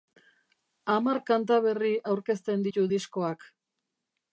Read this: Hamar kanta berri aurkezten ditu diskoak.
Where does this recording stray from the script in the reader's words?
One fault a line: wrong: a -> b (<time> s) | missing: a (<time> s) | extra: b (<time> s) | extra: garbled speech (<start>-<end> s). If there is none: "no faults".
no faults